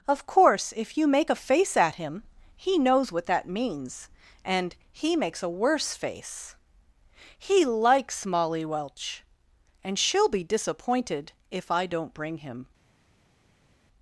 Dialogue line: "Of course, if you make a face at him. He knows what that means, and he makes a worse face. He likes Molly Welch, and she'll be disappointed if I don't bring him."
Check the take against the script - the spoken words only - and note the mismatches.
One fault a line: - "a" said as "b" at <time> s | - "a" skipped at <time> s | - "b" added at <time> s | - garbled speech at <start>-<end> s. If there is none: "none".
none